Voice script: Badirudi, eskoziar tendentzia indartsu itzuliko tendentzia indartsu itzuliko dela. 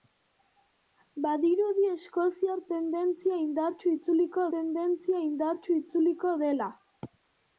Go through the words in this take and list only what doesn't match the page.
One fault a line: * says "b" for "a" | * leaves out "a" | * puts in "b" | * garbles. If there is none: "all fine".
all fine